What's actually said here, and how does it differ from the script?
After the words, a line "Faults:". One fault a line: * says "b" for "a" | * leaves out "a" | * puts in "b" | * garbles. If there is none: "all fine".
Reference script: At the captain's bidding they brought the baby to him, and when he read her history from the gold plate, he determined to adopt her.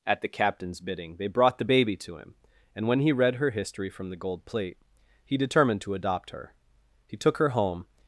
At the captain's bidding they brought the baby to him, and when he read her history from the gold plate, he determined to adopt her. He took her home
Faults:
* puts in "He took her home"